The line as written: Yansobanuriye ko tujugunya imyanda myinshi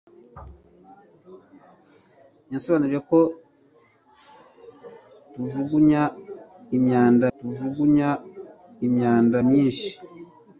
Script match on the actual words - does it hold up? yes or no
no